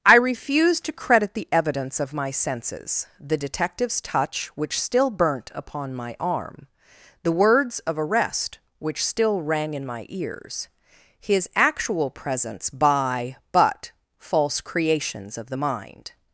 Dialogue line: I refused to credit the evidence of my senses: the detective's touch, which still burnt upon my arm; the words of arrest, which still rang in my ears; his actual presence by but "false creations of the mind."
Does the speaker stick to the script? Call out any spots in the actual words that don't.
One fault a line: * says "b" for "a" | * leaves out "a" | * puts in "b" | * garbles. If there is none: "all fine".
all fine